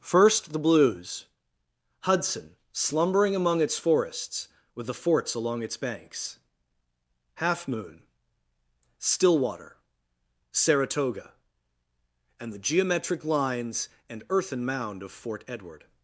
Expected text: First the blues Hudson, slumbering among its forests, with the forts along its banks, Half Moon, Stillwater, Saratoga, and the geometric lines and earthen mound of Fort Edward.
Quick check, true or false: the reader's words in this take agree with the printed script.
true